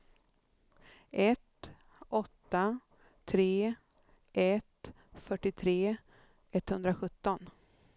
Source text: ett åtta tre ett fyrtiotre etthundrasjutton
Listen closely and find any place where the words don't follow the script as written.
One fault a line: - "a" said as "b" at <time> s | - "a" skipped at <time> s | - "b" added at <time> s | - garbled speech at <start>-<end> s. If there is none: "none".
none